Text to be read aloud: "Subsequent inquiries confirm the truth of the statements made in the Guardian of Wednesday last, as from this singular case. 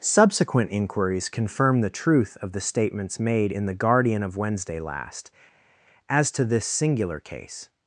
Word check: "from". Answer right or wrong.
wrong